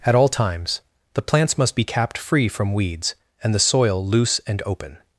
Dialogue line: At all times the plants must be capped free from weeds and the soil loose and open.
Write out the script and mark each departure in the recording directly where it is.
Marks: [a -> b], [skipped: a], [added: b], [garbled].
At all times the plants must be capped free from weeds and the soil loose and open.